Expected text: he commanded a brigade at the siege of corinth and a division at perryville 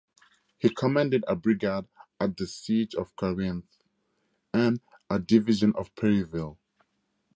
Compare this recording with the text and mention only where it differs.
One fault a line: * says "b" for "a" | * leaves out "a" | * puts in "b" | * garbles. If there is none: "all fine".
all fine